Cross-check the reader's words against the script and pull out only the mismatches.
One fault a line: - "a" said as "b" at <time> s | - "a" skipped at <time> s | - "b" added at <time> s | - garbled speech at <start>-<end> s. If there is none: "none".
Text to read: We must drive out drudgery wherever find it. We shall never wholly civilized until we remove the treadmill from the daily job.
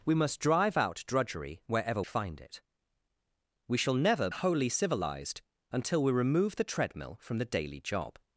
none